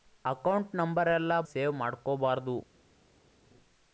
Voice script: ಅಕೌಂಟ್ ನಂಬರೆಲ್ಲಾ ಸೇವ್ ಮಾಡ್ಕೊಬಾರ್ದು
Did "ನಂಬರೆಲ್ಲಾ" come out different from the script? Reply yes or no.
no